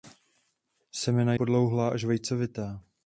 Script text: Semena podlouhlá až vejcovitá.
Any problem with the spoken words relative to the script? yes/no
no